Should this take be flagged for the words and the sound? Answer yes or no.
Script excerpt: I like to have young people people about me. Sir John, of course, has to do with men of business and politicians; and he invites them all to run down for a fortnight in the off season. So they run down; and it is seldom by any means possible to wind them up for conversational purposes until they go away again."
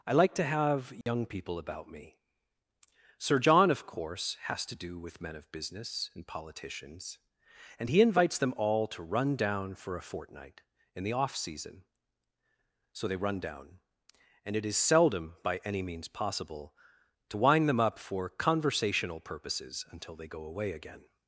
yes